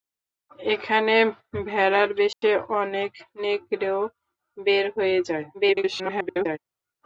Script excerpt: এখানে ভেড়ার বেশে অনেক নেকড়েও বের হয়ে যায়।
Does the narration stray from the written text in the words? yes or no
yes